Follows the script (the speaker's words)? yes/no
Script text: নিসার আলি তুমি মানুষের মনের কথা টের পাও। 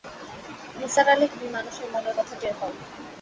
yes